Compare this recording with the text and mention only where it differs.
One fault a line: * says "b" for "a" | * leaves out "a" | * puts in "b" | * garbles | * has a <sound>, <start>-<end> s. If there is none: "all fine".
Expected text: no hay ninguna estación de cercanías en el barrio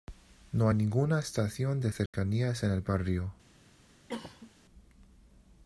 * has a dropout, 2.1-2.1 s
* has a cough, 4.1-4.5 s